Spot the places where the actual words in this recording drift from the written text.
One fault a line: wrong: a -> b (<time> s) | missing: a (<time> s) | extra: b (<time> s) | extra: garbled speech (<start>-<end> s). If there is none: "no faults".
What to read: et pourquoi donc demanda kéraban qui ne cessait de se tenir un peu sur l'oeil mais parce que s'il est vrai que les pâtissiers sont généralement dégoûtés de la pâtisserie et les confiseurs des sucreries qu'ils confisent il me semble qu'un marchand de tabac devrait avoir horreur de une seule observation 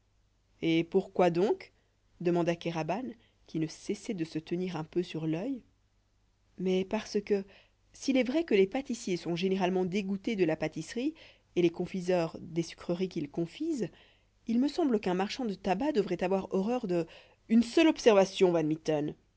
no faults